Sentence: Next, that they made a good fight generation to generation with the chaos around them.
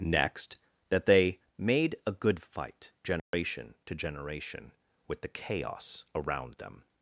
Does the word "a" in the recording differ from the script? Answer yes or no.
no